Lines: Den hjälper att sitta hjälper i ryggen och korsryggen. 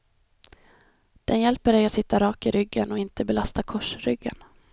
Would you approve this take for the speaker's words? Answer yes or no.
no